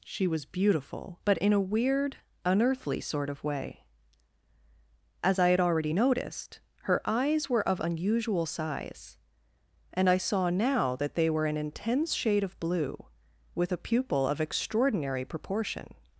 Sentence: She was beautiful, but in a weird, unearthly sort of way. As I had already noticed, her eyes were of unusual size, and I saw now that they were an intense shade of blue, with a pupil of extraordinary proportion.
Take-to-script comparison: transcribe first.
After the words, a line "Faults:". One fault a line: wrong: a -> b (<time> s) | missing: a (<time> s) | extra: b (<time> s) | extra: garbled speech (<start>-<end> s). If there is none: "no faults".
She was beautiful, but in a weird, unearthly sort of way. As I had already noticed, her eyes were of unusual size, and I saw now that they were an intense shade of blue, with a pupil of extraordinary proportion.
Faults:
no faults